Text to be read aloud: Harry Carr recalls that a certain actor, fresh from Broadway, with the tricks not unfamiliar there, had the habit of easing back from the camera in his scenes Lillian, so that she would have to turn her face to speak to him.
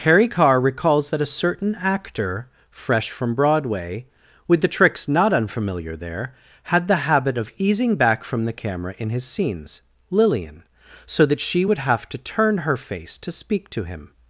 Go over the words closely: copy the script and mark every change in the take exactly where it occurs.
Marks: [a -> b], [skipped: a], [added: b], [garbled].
Harry Carr recalls that a certain actor, fresh from Broadway, with the tricks not unfamiliar there, had the habit of easing back from the camera in his scenes Lillian, so that she would have to turn her face to speak to him.